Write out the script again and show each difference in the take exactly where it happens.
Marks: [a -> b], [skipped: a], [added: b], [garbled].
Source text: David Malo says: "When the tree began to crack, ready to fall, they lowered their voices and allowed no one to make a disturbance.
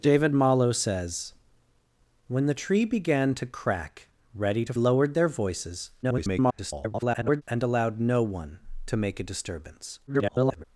David Malo says: "When the tree began to crack, ready to [skipped: fall, they] lowered their voices [garbled] and allowed no one to make a disturbance. [garbled]